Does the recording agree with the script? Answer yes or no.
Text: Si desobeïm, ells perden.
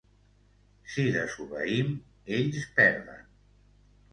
yes